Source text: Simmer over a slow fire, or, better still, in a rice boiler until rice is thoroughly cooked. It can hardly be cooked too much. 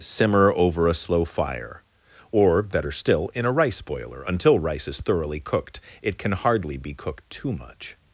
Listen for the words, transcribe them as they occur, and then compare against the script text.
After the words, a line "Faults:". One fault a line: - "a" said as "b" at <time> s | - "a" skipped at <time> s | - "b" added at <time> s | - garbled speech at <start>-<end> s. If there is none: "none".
Simmer over a slow fire, or, better still, in a rice boiler until rice is thoroughly cooked. It can hardly be cooked too much.
Faults:
none